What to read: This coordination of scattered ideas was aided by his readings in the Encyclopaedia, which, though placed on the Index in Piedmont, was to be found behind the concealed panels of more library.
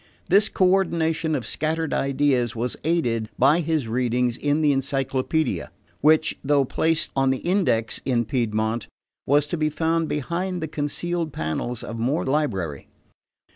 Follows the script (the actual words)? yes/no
yes